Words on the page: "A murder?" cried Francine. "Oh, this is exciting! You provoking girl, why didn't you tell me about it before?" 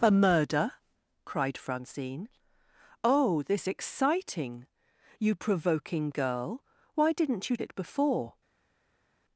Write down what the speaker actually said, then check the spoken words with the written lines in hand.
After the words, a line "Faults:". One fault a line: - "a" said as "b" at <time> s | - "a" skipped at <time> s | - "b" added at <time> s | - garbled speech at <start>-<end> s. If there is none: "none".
"A murder?" cried Francine. "Oh, this exciting! You provoking girl, why didn't you it before?"
Faults:
- "is" skipped at 3.7 s
- "tell me about" skipped at 7.6 s